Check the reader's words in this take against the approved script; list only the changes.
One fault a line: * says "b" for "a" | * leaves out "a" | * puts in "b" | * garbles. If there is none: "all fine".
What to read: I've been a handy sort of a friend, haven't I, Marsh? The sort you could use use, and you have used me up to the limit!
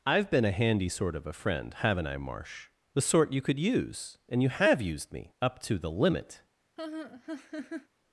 * leaves out "use"